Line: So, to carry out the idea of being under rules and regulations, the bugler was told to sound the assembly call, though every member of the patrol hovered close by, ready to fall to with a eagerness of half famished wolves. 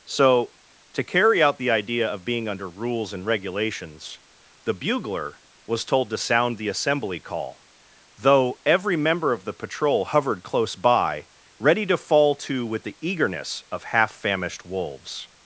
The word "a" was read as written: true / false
false